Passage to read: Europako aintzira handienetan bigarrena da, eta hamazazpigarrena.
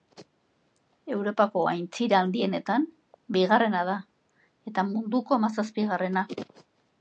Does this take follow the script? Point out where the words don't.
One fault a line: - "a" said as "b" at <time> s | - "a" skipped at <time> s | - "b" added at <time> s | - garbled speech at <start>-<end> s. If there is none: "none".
- "munduko" added at 4.9 s